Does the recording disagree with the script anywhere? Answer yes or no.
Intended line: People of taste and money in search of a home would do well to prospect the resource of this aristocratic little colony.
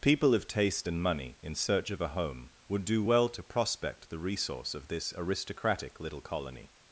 no